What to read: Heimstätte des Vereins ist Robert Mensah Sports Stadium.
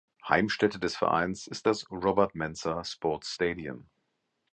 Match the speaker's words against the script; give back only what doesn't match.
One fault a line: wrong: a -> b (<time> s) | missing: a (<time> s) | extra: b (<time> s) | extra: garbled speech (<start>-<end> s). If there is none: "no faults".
extra: das (1.7 s)